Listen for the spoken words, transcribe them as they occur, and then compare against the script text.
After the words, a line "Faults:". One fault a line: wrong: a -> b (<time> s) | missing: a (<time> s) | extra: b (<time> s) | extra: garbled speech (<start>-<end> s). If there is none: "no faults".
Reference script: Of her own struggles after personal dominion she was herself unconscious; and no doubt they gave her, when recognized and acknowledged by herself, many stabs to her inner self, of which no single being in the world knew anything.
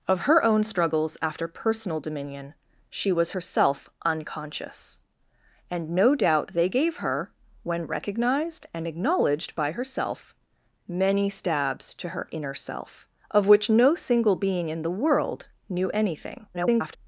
Of her own struggles after personal dominion she was herself unconscious; and no doubt they gave her, when recognized and acknowledged by herself, many stabs to her inner self, of which no single being in the world knew anything. [garbled]
Faults:
extra: garbled speech (16.5-17.0 s)